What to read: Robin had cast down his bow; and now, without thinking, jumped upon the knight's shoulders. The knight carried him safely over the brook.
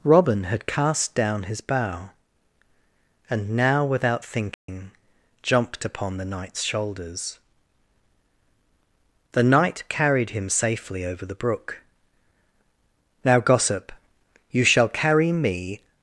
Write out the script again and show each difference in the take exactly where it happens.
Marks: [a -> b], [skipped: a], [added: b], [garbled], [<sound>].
Robin had cast down his bow; and now, without thinking, [dropout] jumped upon the knight's shoulders. The knight carried him safely over the brook. [added: Now gossip you shall carry me]